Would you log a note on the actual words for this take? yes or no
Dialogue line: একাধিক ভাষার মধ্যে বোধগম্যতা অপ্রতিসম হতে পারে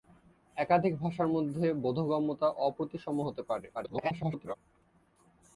yes